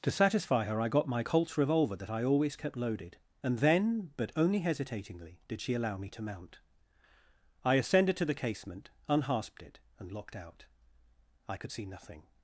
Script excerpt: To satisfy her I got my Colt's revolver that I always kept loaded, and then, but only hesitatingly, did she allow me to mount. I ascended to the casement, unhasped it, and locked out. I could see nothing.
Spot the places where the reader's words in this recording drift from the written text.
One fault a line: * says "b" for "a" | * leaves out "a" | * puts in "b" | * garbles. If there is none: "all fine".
all fine